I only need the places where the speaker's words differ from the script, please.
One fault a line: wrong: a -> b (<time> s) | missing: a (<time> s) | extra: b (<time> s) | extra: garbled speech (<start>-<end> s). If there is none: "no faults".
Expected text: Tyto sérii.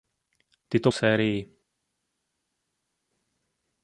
no faults